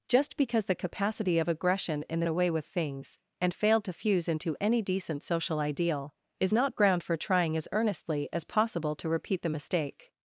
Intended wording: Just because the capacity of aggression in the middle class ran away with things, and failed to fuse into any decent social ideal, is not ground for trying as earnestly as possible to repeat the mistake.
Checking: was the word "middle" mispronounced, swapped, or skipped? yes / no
yes